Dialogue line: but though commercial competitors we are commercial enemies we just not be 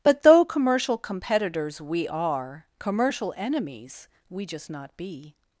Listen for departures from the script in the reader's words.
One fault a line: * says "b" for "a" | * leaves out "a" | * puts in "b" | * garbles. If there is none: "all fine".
all fine